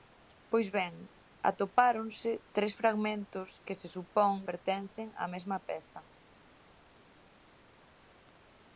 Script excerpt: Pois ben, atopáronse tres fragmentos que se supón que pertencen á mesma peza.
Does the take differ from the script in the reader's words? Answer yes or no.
yes